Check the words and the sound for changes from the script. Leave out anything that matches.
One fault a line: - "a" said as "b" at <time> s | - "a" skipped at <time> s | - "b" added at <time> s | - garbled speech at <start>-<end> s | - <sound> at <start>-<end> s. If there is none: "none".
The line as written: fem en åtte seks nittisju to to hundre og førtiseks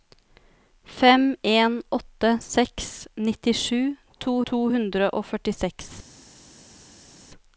none